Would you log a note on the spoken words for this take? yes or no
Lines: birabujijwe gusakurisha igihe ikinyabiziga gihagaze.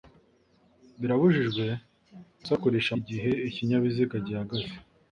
no